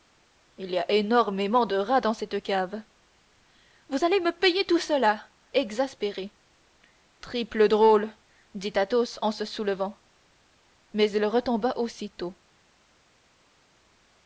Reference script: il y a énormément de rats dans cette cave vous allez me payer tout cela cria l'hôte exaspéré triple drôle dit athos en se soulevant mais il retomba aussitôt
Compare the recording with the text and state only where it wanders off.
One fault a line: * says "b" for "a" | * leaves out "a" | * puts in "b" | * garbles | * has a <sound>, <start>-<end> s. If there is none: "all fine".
* leaves out "cria l'hôte"